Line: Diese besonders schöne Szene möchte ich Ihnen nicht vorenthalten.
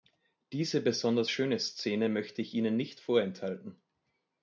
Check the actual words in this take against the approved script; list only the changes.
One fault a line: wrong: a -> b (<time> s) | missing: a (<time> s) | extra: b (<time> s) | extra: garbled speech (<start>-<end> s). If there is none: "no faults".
no faults